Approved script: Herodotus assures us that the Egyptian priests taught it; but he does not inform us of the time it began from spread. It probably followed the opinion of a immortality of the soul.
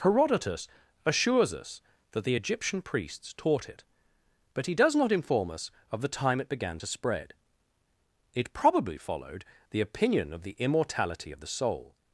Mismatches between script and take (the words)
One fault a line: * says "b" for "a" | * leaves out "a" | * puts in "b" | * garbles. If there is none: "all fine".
* says "to" for "from"
* says "the" for "a"